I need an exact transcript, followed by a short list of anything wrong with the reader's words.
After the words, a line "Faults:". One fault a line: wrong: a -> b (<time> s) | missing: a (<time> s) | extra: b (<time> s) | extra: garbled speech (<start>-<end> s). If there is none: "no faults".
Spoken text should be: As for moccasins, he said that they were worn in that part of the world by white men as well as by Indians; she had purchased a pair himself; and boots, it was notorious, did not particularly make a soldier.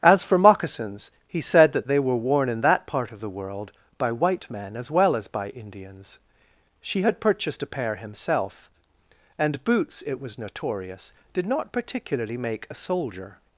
As for moccasins, he said that they were worn in that part of the world by white men as well as by Indians; she had purchased a pair himself; and boots, it was notorious, did not particularly make a soldier.
Faults:
no faults